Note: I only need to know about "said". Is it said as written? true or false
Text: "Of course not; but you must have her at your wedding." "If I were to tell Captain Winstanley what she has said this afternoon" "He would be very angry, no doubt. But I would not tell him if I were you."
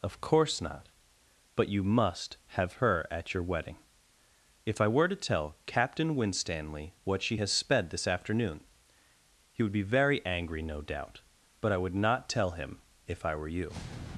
false